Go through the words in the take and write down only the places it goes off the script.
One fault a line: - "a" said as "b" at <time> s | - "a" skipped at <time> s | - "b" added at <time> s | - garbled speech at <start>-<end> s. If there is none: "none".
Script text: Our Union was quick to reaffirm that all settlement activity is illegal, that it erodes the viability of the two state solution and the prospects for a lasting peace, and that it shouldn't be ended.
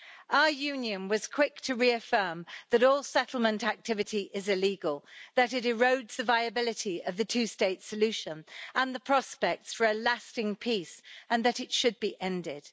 - "shouldn't" said as "should" at 11.7 s